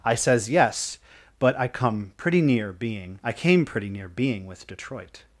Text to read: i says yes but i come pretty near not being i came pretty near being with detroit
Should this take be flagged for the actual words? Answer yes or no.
yes